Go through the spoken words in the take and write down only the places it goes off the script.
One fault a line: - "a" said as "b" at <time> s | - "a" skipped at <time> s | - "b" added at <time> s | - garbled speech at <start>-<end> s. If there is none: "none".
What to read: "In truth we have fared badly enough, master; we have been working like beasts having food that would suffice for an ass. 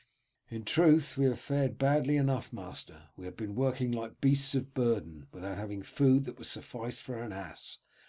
- "of burden without" added at 4.5 s